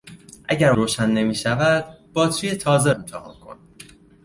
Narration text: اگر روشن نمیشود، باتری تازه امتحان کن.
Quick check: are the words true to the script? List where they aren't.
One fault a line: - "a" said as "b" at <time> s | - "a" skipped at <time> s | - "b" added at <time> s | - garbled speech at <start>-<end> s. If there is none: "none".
none